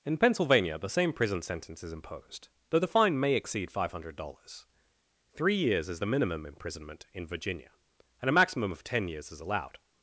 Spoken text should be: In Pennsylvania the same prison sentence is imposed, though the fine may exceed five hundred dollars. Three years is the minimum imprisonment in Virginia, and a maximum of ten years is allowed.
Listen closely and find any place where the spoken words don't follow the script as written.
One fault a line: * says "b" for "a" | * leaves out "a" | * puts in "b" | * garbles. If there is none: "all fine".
all fine